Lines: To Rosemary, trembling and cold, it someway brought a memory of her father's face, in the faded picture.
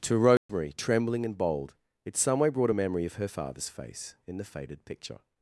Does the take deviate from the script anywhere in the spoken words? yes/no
yes